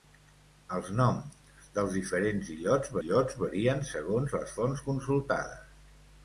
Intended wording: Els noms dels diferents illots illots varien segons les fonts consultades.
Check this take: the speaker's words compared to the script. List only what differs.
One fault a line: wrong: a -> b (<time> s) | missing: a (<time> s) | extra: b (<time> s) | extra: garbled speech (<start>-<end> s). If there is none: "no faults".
no faults